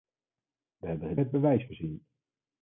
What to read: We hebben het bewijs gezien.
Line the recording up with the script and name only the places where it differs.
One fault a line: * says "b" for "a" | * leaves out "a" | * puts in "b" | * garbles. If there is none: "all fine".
all fine